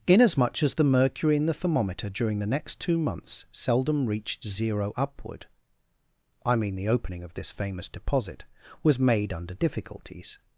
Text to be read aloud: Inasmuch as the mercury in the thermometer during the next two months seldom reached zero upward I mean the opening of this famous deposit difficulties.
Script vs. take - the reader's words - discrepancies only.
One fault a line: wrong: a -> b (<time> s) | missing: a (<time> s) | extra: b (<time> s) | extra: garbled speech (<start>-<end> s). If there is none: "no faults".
extra: was made under (8.8 s)